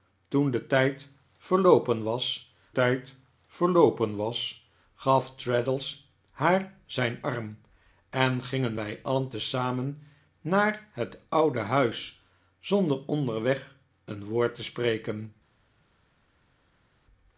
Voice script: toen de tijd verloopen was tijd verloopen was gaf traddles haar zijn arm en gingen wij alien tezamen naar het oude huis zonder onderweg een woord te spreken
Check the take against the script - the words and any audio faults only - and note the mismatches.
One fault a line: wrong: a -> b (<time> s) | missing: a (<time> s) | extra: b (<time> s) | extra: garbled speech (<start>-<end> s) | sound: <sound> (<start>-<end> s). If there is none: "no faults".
no faults